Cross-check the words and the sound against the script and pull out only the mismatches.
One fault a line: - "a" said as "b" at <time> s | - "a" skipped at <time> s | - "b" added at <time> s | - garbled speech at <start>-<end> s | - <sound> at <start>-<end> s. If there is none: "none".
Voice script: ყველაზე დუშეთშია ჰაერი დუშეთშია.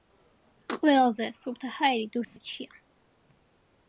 - "დუშეთშია" said as "სუფთა" at 1.4 s
- dropout at 2.2-2.4 s